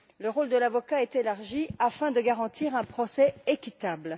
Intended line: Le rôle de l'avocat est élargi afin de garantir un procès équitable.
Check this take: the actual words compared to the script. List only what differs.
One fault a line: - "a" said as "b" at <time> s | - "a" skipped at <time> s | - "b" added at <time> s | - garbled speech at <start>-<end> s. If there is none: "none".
none